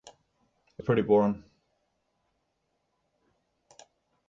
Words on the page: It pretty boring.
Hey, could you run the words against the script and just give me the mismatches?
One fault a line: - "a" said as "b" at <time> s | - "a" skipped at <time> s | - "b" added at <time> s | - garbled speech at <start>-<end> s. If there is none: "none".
none